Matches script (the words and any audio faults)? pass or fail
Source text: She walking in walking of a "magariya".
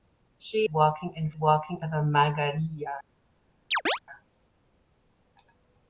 fail